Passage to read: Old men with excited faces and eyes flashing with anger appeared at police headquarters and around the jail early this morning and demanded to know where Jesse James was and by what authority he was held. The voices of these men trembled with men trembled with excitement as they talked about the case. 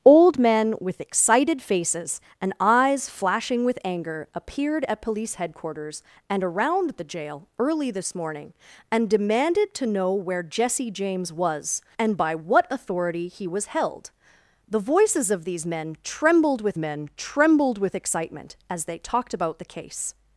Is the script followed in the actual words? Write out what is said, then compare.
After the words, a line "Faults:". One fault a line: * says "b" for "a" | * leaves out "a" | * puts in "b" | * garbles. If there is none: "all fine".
Old men with excited faces and eyes flashing with anger appeared at police headquarters and around the jail early this morning and demanded to know where Jesse James was and by what authority he was held. The voices of these men trembled with men trembled with excitement as they talked about the case.
Faults:
all fine